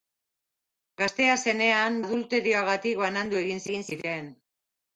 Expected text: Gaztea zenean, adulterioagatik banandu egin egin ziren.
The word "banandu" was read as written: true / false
true